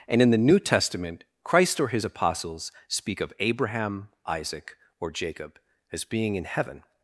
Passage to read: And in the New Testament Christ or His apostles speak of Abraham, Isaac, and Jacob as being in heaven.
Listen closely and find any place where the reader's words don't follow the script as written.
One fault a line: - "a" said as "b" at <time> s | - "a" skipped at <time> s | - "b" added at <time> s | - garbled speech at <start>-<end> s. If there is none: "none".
- "and" said as "or" at 5.0 s